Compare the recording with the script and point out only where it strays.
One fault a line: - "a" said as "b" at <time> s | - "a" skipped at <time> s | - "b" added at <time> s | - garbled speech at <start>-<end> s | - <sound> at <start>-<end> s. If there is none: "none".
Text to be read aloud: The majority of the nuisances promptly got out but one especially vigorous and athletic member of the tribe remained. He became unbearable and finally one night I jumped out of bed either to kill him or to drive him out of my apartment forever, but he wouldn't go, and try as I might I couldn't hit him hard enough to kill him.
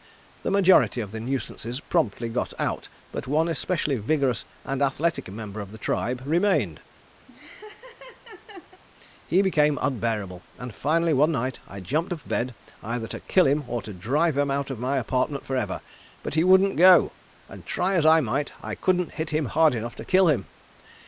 - laugh at 7.3-8.8 s
- "out" skipped at 12.1 s